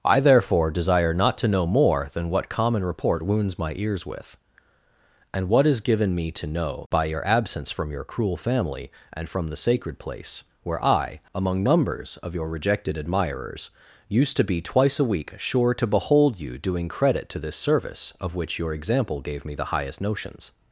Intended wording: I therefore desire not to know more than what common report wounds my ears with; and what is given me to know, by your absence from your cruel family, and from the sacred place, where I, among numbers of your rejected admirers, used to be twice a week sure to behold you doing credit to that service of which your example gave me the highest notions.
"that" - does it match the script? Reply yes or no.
no